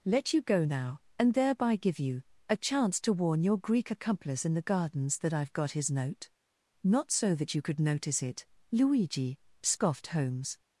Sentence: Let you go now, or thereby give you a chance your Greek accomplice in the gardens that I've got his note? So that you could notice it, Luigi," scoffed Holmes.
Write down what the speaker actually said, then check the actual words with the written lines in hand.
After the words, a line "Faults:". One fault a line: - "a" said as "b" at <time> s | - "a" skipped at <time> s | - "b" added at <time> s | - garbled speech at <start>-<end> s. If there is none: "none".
Let you go now, and thereby give you a chance to warn your Greek accomplice in the gardens that I've got his note? Not so that you could notice it, Luigi," scoffed Holmes.
Faults:
- "or" said as "and" at 1.2 s
- "to warn" added at 3.0 s
- "Not" added at 6.8 s